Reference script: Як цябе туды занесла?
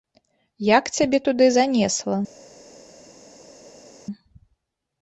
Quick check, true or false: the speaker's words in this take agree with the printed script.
true